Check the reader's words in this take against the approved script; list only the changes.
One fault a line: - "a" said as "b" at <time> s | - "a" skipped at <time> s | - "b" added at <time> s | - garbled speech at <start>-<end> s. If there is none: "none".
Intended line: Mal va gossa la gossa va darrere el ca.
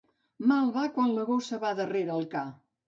- "gossa" said as "quan" at 0.9 s